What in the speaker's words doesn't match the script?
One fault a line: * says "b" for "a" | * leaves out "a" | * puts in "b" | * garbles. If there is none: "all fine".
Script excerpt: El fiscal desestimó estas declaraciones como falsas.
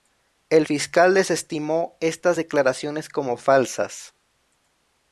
all fine